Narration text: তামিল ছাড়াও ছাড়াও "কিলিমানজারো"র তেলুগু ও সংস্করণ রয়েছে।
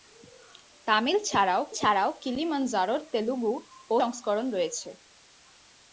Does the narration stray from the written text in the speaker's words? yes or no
no